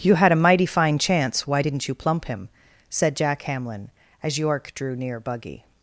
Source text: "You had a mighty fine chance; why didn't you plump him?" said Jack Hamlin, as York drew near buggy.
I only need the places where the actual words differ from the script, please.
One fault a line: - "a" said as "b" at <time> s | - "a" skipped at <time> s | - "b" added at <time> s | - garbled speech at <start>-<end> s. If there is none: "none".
none